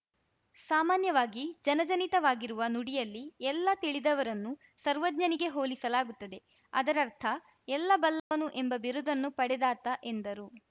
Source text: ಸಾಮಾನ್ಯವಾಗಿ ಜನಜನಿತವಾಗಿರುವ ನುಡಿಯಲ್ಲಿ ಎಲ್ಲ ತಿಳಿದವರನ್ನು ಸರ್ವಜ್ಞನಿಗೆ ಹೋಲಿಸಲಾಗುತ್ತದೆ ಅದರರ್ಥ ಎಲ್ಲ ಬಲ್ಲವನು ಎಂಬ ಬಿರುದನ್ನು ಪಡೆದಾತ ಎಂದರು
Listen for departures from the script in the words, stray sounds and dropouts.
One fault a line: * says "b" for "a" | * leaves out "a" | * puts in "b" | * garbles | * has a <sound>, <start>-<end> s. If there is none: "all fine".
* has a dropout, 8.2-8.3 s